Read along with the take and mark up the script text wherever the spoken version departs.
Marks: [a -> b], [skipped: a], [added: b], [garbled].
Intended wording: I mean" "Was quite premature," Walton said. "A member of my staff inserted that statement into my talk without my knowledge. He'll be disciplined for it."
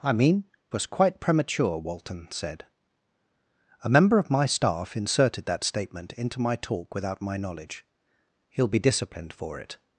I mean" "Was quite premature," Walton said. "A member of my staff inserted that statement into my talk without my knowledge. He'll be disciplined for it."